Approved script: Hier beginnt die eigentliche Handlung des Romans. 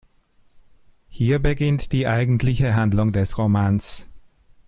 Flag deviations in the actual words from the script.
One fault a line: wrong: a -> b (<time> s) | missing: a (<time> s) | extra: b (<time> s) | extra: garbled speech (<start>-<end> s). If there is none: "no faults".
no faults